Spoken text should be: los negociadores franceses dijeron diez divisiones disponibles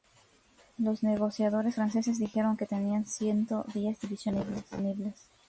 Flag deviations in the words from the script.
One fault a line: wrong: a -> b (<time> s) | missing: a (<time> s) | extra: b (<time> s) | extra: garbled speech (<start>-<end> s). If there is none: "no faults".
extra: que tenían ciento (2.6 s)